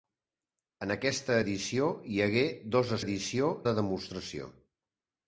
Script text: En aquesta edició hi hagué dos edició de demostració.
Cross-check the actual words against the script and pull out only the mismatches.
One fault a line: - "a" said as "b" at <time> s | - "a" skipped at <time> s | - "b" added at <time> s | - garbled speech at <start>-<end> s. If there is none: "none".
none